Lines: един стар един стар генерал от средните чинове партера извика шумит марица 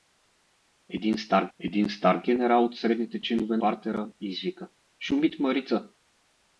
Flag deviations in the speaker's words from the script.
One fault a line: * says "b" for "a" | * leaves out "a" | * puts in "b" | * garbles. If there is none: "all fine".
all fine